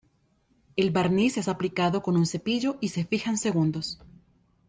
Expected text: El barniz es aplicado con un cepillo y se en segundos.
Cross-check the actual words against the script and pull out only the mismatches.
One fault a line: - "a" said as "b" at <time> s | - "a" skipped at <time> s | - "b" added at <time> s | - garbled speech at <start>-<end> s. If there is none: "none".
- "fija" added at 3.0 s